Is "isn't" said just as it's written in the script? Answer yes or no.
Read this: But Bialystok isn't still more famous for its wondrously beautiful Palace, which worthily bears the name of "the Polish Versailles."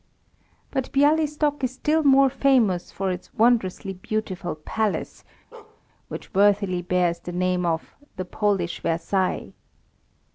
no